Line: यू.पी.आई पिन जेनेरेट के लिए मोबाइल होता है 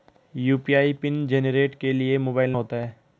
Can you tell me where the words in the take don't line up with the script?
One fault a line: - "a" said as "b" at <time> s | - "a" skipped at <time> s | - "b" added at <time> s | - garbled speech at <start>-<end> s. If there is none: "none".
none